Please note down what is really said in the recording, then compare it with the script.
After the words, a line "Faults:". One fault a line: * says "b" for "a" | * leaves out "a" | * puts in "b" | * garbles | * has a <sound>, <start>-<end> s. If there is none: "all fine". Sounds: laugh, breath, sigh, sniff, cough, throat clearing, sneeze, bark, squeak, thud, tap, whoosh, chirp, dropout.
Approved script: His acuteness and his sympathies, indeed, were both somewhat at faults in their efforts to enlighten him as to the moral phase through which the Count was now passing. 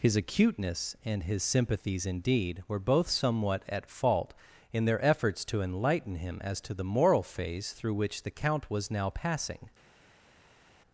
His acuteness and his sympathies, indeed, were both somewhat at fault in their efforts to enlighten him as to the moral phase through which the Count was now passing.
Faults:
* says "fault" for "faults"